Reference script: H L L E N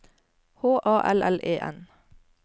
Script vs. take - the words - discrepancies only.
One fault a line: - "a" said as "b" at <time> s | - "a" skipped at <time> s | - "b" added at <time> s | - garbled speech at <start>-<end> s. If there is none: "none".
- "A" added at 0.9 s